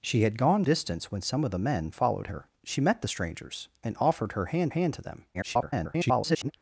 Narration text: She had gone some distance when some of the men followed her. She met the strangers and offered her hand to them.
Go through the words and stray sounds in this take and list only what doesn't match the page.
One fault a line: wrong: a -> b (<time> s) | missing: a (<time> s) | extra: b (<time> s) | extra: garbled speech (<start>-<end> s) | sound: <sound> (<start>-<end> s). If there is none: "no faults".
missing: some (0.7 s)
extra: hand (4.7 s)
extra: garbled speech (5.3-6.5 s)